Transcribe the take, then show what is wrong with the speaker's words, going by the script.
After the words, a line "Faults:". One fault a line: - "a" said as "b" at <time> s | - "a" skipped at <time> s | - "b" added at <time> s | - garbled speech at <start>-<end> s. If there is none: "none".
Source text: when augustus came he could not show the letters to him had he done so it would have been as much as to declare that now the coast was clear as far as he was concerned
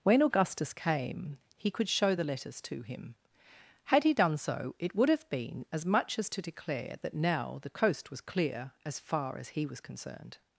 when augustus came he could show the letters to him had he done so it would have been as much as to declare that now the coast was clear as far as he was concerned
Faults:
- "not" skipped at 1.9 s